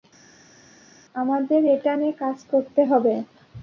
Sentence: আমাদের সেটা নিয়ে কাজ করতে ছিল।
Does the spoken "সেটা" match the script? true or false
false